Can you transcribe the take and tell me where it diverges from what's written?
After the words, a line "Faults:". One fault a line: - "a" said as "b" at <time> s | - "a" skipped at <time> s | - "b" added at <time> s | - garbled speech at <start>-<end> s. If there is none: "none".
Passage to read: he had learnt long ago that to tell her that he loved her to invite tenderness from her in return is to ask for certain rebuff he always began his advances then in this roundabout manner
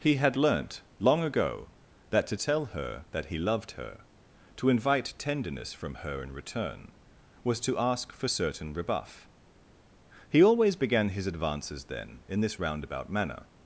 he had learnt long ago that to tell her that he loved her to invite tenderness from her in return was to ask for certain rebuff he always began his advances then in this roundabout manner
Faults:
- "is" said as "was" at 7.4 s